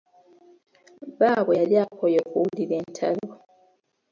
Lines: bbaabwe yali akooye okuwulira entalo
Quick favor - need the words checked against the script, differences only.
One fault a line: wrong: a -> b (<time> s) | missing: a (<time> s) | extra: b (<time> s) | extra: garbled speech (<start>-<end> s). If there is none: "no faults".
no faults